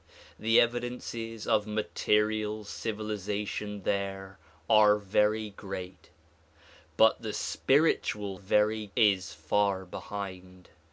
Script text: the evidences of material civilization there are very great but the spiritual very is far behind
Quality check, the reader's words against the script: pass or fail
pass